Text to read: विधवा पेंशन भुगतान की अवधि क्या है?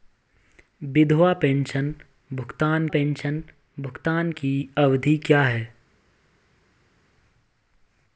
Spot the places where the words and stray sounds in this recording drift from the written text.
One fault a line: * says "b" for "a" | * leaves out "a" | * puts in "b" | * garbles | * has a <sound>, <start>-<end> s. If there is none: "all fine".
* puts in "पेंशन भुगतान"